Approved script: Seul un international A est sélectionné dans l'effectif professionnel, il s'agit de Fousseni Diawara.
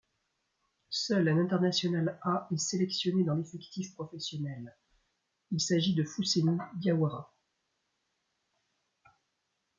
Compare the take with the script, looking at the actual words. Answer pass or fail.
pass